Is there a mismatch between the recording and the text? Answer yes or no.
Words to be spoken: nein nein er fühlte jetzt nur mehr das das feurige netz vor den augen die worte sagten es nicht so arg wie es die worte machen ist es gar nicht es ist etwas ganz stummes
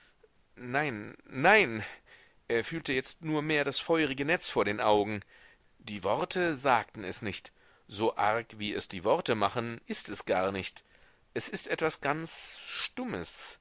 yes